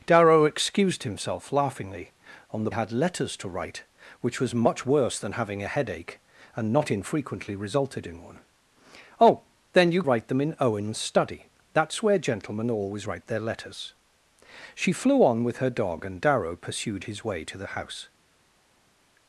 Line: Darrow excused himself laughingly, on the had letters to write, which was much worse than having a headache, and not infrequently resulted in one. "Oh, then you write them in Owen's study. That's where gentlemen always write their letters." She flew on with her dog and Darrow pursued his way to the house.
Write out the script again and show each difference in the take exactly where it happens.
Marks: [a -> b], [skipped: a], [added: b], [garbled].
Darrow excused himself laughingly, on the had letters to write, which was much worse than having a headache, and not infrequently resulted in one. "Oh, then you write them in Owen's study. That's where gentlemen always write their letters." She flew on with her dog and Darrow pursued his way to the house.